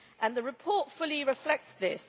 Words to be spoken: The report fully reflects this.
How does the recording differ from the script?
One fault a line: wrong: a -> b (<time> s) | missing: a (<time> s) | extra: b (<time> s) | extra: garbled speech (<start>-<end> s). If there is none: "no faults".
no faults